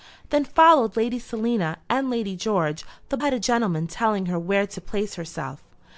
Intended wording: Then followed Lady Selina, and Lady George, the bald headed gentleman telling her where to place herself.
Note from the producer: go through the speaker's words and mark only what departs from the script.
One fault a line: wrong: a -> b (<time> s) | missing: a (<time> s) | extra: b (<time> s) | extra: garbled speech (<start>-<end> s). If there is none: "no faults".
missing: bald (3.2 s)